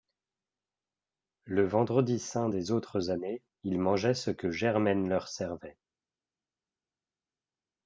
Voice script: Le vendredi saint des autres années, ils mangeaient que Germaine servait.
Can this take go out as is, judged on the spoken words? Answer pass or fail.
fail